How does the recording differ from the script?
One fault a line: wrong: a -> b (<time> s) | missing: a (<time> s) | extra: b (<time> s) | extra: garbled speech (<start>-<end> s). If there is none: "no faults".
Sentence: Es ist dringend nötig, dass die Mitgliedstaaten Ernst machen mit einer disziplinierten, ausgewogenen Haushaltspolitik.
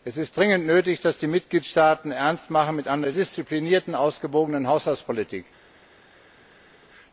no faults